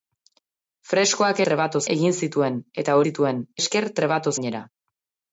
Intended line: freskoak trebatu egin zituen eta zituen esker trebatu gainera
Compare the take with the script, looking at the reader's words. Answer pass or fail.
pass